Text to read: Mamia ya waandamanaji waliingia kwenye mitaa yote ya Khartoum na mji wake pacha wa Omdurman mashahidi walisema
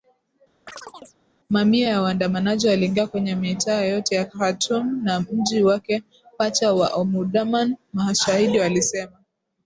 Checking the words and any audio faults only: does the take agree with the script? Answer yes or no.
no